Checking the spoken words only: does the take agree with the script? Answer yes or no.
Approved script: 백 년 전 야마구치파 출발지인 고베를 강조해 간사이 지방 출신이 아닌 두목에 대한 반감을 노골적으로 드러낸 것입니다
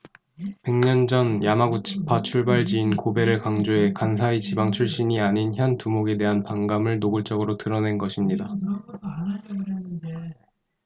no